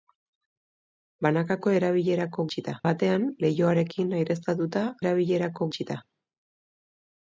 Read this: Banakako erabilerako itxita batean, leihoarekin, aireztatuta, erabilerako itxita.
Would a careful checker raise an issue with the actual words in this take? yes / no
no